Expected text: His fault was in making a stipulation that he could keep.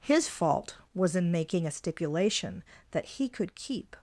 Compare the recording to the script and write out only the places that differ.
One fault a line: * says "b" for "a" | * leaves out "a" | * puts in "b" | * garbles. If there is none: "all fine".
all fine